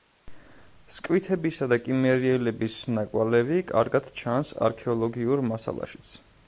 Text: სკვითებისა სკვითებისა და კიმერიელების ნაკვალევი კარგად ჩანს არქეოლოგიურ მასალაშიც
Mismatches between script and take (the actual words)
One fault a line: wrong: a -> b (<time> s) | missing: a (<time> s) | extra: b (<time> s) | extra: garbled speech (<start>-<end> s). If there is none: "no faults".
missing: სკვითებისა (1.7 s)